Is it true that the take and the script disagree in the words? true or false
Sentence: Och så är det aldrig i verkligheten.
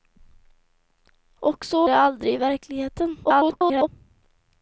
true